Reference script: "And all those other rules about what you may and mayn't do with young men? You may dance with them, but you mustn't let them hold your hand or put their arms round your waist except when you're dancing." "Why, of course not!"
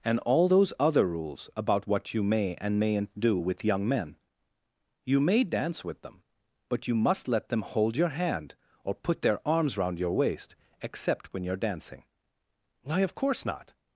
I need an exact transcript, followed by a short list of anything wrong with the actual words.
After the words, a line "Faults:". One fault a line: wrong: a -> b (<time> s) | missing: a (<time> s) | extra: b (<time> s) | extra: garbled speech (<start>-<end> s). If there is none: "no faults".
"And all those other rules about what you may and mayn't do with young men? You may dance with them, but you must let them hold your hand or put their arms round your waist except when you're dancing." "Why, of course not!"
Faults:
wrong: mustn't -> must (6.9 s)